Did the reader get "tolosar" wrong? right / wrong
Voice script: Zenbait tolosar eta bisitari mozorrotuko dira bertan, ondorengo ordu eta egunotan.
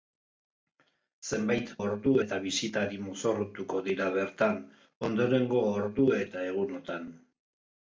wrong